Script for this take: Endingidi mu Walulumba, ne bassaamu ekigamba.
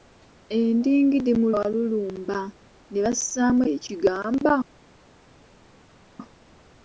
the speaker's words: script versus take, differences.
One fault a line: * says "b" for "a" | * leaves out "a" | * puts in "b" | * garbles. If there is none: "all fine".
all fine